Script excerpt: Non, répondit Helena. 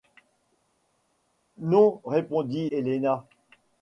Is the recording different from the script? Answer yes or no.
no